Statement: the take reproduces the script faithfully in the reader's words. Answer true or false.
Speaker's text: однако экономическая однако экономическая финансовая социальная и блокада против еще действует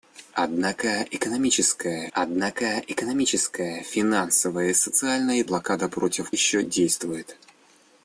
true